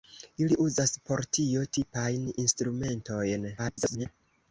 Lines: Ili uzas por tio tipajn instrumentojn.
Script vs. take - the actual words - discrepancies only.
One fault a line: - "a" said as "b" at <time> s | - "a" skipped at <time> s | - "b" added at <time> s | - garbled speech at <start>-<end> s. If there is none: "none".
- garbled speech at 3.6-4.1 s